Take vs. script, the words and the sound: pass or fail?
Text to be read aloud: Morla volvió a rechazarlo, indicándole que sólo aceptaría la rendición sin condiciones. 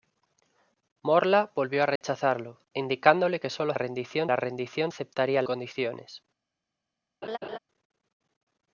fail